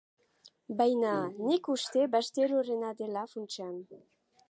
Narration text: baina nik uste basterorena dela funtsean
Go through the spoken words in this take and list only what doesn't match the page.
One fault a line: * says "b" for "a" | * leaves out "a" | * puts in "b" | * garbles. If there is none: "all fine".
all fine